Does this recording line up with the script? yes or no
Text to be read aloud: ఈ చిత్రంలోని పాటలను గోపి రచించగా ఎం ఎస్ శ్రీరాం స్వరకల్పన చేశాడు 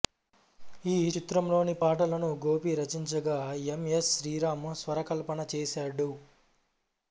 yes